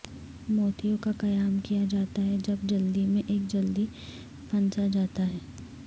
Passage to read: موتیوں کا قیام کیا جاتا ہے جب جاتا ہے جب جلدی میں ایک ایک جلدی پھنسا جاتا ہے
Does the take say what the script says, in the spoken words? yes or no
no